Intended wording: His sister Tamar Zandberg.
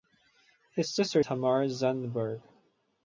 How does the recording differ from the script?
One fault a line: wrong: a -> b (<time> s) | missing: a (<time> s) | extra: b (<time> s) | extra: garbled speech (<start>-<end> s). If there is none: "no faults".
no faults